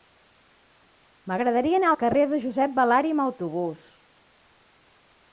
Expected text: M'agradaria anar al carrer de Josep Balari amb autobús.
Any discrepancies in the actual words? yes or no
no